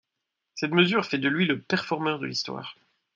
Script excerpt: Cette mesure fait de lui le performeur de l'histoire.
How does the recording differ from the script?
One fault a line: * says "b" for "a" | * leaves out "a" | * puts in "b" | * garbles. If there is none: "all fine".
all fine